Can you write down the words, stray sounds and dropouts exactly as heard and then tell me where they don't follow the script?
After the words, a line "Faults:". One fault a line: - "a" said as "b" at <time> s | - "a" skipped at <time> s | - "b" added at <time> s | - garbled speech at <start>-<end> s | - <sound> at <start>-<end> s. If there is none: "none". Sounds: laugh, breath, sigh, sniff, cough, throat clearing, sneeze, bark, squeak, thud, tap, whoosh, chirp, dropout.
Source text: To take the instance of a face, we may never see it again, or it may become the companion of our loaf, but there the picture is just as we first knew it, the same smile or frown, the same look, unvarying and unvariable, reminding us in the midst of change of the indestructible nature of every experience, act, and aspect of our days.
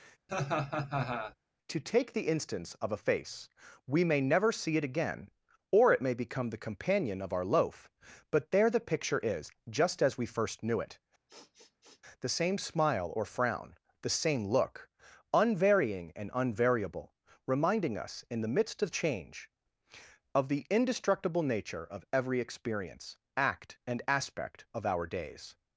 To take the instance of a face, we may never see it again, or it may become the companion of our loaf, but there the picture is just as we first knew it, the same smile or frown, the same look, unvarying and unvariable, reminding us in the midst of change of the indestructible nature of every experience, act, and aspect of our days.
Faults:
- laugh at 0.3-1.3 s
- sniff at 11.3-12.0 s